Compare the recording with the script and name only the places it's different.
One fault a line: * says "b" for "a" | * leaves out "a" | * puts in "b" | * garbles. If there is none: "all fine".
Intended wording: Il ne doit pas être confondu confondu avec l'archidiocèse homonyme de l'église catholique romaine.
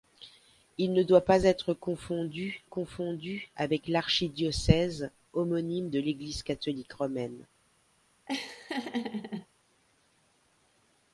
all fine